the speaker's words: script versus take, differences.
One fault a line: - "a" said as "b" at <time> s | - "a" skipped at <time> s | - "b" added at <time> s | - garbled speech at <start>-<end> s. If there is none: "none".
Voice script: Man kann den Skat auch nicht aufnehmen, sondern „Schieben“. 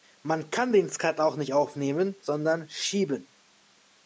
none